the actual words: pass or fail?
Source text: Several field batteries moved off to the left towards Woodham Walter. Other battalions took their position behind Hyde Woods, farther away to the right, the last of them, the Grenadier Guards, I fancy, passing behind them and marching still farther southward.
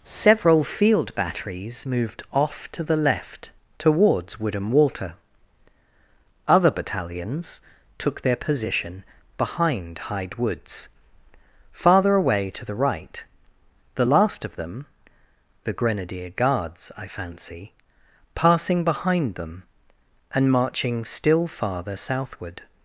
pass